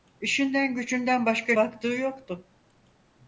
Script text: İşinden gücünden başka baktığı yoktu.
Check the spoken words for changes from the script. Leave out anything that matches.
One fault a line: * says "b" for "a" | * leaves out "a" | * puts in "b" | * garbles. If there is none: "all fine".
all fine